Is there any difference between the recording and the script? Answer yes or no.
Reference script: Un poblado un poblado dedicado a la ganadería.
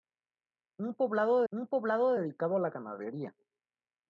no